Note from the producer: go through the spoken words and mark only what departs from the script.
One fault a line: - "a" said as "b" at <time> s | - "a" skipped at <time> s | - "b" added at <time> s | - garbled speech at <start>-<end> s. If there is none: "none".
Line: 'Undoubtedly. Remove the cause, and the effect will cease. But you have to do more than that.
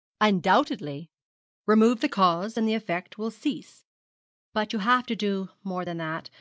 none